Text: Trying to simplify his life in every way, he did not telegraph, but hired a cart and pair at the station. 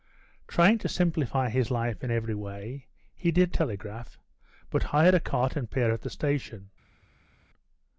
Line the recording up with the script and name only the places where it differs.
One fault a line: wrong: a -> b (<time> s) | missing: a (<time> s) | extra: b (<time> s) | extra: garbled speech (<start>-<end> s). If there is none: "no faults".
missing: not (3.5 s)